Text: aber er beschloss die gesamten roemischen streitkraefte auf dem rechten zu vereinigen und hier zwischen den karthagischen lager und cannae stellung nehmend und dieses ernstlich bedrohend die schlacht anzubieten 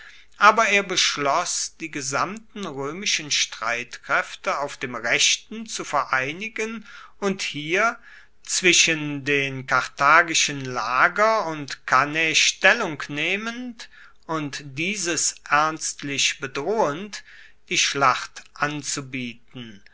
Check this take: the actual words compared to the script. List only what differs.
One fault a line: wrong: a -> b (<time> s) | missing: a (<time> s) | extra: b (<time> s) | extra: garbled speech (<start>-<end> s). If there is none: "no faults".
no faults